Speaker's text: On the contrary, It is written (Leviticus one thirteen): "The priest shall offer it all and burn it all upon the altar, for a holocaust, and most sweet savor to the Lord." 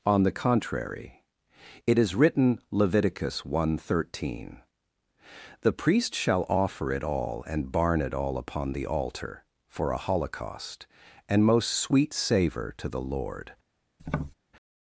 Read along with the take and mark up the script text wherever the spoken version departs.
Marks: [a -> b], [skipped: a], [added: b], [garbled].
On the contrary, It is written (Leviticus one thirteen): "The priest shall offer it all and [burn -> barn] it all upon the altar, for a holocaust, and most sweet savor to the Lord."